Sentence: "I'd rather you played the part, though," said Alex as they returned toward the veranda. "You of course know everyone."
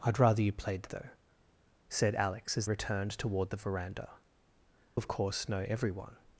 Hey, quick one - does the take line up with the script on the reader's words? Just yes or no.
no